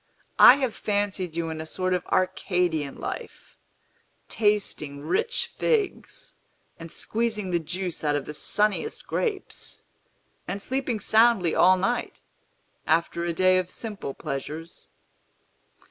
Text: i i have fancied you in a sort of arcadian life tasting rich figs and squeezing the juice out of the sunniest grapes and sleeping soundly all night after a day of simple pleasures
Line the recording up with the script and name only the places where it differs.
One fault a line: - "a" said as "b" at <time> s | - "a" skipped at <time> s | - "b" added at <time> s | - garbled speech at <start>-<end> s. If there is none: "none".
- "i" skipped at 0.6 s